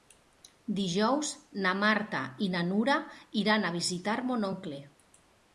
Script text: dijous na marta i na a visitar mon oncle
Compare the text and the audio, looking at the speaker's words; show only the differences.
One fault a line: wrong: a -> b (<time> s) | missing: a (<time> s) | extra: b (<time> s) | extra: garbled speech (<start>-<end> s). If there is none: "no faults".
extra: nura iran (2.7 s)